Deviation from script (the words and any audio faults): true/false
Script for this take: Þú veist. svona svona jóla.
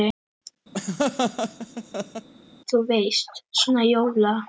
true